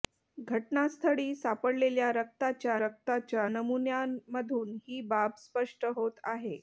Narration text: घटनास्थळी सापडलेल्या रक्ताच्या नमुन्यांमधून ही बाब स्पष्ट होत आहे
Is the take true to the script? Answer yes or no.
no